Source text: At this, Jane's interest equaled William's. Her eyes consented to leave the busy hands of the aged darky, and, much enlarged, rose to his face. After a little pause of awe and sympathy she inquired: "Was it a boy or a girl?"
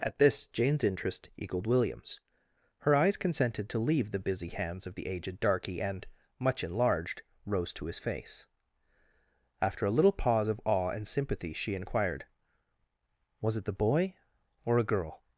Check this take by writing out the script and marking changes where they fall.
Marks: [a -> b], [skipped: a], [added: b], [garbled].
At this, Jane's interest equaled William's. Her eyes consented to leave the busy hands of the aged darky, and, much enlarged, rose to his face. After a little pause of awe and sympathy she inquired: "Was it [a -> the] boy or a girl?"